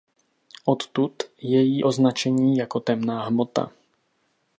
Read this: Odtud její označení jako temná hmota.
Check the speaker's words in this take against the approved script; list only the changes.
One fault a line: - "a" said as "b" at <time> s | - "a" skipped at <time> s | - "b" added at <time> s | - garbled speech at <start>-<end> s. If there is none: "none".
none